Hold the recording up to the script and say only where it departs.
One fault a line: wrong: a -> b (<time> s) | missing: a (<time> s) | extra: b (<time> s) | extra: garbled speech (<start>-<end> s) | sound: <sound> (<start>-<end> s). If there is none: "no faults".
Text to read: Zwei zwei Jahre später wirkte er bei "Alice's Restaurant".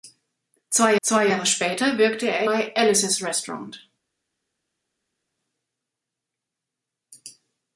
no faults